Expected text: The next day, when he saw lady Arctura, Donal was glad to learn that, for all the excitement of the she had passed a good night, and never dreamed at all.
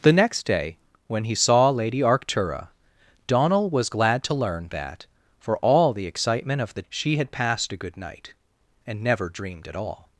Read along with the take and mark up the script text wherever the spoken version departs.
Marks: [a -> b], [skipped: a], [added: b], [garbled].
The next day, when he saw lady Arctura, Donal was glad to learn that, for all the excitement of the she had passed a good night, and never dreamed at all.